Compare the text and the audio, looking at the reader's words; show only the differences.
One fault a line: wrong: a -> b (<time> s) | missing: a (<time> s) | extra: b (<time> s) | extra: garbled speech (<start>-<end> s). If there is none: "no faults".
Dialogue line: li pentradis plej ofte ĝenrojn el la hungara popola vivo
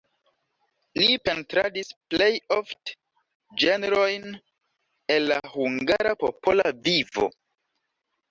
no faults